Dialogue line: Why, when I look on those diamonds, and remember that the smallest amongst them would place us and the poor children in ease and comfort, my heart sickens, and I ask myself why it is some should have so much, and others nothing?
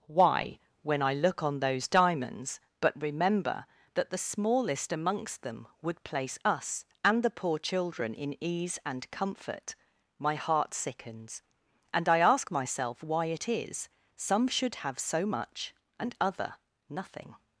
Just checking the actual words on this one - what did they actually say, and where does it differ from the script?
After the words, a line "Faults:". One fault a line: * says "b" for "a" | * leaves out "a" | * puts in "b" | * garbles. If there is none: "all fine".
Why, when I look on those diamonds, but remember that the smallest amongst them would place us and the poor children in ease and comfort, my heart sickens, and I ask myself why it is some should have so much, and other nothing?
Faults:
* says "but" for "and"
* says "other" for "others"